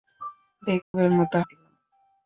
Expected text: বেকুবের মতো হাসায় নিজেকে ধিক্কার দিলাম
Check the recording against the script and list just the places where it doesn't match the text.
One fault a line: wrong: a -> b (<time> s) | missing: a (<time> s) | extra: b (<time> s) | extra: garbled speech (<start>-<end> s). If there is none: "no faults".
missing: হাসায় নিজেকে ধিক্কার (1.4 s)